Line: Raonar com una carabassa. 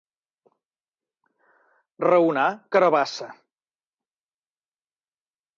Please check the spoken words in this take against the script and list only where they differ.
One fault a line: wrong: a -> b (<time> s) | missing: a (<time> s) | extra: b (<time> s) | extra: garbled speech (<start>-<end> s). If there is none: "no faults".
missing: com una (2.5 s)